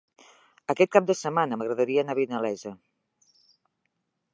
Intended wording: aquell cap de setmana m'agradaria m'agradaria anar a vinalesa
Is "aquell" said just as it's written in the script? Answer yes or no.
no